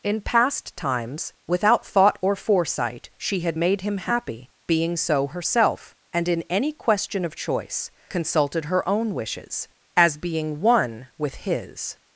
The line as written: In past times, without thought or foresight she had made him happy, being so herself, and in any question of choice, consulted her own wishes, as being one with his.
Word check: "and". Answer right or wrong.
right